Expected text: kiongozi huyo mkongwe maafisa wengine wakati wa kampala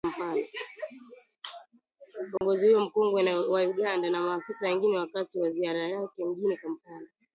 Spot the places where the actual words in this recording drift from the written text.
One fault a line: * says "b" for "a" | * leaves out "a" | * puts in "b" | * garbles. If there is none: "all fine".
* puts in "wa Uganda na"
* puts in "ziara yake mjini"